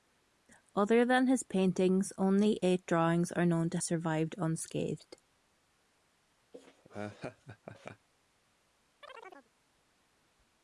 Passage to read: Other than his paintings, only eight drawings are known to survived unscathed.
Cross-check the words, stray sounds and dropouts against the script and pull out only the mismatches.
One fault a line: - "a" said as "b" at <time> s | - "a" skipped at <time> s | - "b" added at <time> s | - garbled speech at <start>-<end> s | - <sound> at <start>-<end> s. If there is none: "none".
- laugh at 6.5-8.1 s
- chirp at 9.0-9.5 s